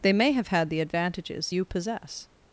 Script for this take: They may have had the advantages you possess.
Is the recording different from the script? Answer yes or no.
no